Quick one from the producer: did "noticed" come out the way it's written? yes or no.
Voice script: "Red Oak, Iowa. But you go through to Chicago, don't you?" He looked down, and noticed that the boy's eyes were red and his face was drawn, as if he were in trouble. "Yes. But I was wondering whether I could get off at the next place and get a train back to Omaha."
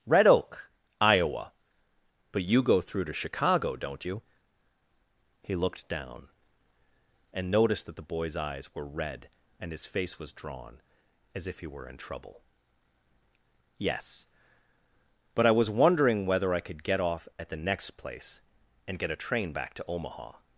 yes